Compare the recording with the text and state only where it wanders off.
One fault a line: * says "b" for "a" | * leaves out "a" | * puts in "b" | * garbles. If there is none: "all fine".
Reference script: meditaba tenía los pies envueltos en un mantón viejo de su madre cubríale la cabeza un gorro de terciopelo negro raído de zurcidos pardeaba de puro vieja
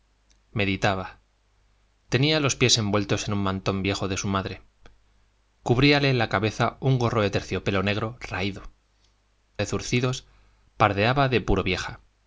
all fine